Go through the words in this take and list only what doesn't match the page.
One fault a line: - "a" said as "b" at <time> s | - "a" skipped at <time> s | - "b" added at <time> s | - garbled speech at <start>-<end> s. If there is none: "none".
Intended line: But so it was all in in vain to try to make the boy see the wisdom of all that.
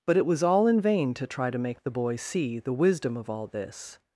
- "so" skipped at 0.2 s
- "in" skipped at 0.8 s
- "that" said as "this" at 3.5 s